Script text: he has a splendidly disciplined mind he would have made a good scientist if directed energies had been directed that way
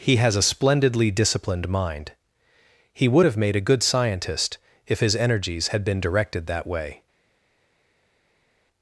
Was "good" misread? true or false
false